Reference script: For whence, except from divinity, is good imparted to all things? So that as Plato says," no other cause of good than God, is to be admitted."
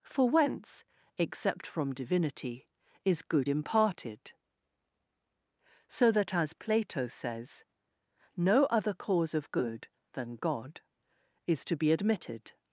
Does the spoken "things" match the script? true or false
false